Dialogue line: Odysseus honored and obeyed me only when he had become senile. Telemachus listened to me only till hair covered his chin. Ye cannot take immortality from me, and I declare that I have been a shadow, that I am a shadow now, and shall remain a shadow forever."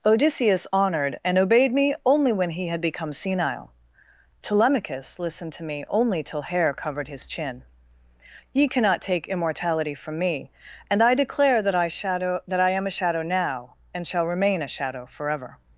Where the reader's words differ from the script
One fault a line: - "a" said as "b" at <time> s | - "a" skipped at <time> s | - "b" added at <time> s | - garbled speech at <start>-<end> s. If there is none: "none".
- "have been a" skipped at 11.9 s